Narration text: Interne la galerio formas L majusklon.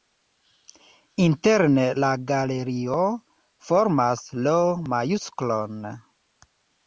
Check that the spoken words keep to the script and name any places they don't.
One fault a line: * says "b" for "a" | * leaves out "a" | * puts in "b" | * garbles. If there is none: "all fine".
all fine